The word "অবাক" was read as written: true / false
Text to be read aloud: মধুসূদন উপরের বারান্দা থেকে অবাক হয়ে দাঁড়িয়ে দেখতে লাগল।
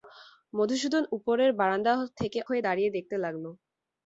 false